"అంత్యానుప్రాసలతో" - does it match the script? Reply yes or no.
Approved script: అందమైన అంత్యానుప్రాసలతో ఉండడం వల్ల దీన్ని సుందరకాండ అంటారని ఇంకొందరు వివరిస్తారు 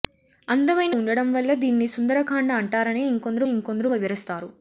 no